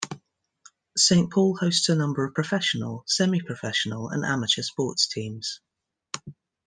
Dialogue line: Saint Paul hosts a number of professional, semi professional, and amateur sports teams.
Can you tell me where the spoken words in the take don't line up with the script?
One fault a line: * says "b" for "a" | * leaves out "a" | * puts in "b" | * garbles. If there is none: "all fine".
all fine